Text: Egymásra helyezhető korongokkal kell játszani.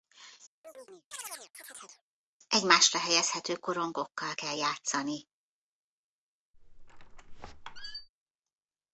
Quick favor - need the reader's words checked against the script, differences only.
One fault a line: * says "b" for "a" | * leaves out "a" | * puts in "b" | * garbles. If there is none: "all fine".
all fine